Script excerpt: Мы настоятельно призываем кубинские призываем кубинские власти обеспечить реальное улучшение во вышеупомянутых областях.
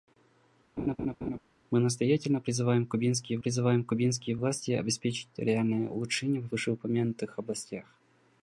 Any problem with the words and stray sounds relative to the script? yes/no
yes